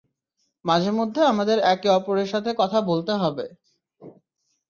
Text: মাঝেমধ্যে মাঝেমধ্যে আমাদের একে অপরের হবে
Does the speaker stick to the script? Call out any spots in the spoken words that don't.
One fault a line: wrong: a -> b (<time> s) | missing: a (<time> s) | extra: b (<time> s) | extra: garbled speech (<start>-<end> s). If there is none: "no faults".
missing: মাঝেমধ্যে (1.2 s)
extra: সাথে কথা বলতে (2.3 s)